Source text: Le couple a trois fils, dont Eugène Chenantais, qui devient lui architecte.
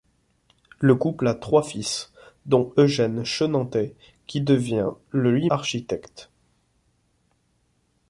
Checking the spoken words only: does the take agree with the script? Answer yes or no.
yes